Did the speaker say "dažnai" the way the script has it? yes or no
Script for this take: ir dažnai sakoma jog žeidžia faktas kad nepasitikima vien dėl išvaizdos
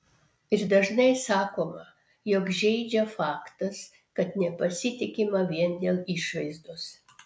yes